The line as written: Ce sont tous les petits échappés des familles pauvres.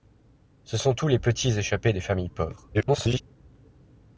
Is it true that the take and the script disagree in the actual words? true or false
true